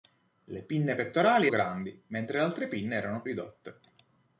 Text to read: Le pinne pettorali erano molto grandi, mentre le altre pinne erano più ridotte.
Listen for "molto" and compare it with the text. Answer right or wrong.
wrong